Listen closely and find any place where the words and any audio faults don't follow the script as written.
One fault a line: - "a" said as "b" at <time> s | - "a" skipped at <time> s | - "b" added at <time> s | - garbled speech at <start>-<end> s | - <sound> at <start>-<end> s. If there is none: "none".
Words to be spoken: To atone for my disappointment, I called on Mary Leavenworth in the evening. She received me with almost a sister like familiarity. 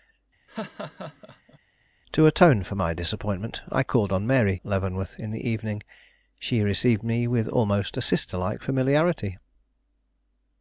- laugh at 0.5-1.6 s